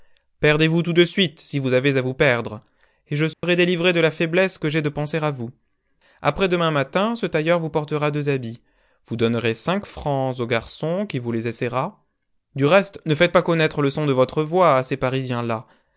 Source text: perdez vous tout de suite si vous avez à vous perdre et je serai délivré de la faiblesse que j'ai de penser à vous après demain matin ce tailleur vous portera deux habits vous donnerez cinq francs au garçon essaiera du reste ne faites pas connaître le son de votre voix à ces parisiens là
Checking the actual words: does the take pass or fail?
fail